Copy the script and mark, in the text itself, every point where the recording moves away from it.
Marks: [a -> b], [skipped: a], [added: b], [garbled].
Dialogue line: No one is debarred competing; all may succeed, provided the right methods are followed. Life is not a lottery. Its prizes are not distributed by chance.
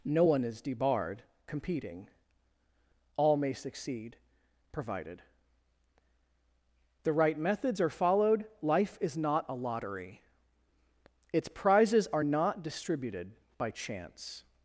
No one is debarred competing; all may succeed, provided the right methods are followed. Life is not a lottery. Its prizes are not distributed by chance.